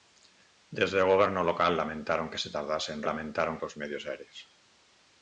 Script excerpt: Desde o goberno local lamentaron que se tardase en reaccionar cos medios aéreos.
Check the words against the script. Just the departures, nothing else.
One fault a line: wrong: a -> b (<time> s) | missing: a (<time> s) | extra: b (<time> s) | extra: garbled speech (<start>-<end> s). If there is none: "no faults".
wrong: reaccionar -> lamentaron (3.1 s)